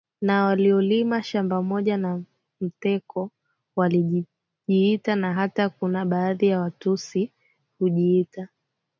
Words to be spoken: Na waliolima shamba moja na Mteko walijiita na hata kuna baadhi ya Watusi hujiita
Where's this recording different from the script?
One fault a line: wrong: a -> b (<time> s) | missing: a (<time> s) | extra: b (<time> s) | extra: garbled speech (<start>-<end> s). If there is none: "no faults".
no faults